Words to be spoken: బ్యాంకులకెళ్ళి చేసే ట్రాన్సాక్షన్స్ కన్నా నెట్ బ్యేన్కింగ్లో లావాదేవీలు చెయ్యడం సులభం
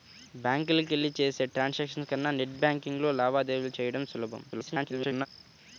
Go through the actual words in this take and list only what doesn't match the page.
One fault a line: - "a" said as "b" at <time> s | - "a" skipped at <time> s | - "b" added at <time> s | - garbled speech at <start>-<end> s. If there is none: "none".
- garbled speech at 4.5-5.3 s